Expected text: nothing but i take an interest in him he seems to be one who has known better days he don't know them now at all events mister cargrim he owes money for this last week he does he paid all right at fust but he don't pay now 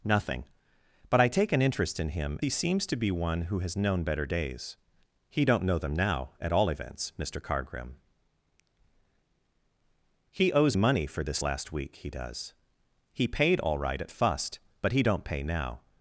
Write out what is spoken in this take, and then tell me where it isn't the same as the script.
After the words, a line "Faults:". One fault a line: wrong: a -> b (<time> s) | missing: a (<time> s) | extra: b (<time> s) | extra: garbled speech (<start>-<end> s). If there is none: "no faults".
nothing but i take an interest in him he seems to be one who has known better days he don't know them now at all events mister cargrim he owes money for this last week he does he paid all right at fust but he don't pay now
Faults:
no faults